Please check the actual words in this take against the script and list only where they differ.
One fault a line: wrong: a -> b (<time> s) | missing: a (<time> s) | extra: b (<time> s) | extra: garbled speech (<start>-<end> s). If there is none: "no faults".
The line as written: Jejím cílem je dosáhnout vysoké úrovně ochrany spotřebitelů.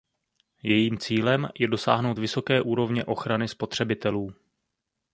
no faults